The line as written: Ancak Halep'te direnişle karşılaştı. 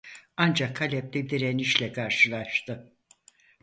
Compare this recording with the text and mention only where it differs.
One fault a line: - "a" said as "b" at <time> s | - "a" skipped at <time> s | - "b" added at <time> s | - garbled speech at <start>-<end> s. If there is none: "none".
none